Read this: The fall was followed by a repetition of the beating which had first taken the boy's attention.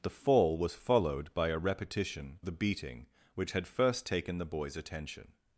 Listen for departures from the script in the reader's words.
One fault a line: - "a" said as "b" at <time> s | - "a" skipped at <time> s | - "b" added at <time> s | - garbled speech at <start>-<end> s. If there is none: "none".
- "of" skipped at 2.4 s